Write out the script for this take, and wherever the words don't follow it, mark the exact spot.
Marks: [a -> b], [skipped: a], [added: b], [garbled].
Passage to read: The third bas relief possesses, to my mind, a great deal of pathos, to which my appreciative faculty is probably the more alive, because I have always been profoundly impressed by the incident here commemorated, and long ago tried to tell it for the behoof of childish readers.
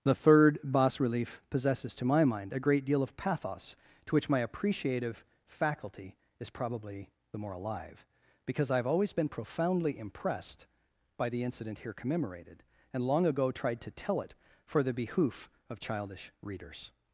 The third bas relief possesses, to my mind, a great deal of pathos, to which my appreciative faculty is probably the more alive, because I have always been profoundly impressed by the incident here commemorated, and long ago tried to tell it for the behoof of childish readers.